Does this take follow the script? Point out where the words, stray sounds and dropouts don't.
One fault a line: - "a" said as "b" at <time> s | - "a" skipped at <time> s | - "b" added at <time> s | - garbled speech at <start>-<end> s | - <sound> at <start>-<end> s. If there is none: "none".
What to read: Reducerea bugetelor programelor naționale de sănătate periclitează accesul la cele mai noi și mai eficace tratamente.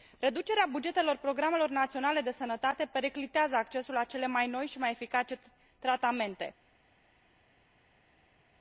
none